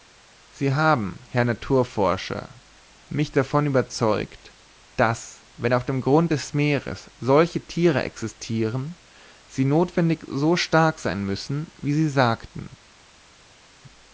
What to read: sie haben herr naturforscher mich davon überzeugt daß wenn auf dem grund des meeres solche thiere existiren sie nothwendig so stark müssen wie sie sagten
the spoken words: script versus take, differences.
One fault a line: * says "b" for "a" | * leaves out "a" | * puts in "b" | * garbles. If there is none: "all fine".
* puts in "sein"